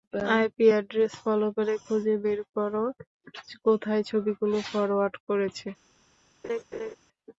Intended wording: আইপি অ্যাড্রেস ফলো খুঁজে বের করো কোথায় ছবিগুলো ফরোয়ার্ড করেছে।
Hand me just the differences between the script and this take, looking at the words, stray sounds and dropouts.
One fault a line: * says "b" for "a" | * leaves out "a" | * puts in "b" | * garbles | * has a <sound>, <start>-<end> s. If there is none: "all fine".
* puts in "করে"
* has a laugh, 6.4-7.0 s